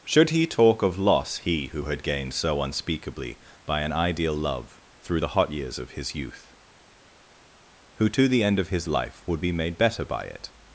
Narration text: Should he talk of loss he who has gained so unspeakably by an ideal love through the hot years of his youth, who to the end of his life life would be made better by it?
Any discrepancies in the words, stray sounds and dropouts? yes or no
yes